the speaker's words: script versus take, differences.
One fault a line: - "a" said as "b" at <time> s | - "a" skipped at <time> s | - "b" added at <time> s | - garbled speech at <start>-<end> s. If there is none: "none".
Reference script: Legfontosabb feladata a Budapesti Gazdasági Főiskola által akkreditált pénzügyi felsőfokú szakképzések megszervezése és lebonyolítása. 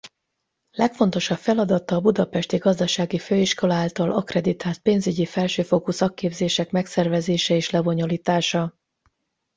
none